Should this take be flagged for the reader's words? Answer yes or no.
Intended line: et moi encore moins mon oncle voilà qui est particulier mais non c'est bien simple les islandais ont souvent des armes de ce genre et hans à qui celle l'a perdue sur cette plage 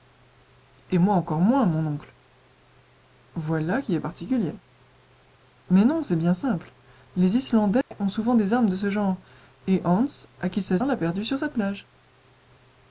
no